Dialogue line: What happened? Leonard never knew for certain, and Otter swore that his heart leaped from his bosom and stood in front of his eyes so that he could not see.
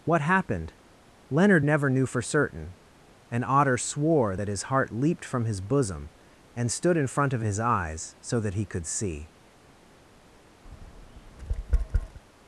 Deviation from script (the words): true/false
true